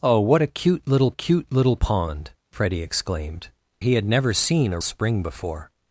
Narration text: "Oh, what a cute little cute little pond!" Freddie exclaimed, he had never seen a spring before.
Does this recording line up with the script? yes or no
yes